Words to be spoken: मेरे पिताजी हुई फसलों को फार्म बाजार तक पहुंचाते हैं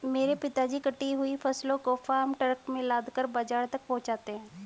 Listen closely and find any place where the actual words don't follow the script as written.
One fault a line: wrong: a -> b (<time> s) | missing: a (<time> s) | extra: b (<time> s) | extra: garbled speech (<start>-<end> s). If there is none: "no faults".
extra: कटी (0.8 s)
extra: ट्रक में लादकर (2.3 s)